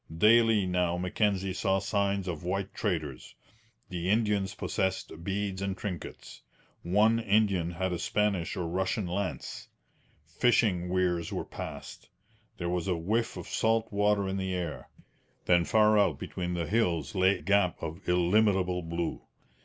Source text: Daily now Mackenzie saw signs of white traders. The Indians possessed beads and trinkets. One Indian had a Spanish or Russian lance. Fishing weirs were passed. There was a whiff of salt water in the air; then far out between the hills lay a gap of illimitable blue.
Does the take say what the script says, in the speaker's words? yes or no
no